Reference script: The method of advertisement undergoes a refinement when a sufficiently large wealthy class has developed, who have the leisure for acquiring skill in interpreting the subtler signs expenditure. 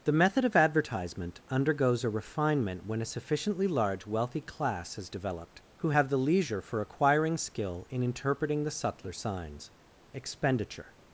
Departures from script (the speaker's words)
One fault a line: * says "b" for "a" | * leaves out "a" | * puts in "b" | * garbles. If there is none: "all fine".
all fine